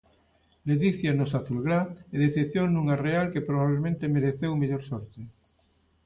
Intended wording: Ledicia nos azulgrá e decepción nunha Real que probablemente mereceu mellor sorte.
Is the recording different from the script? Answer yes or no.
no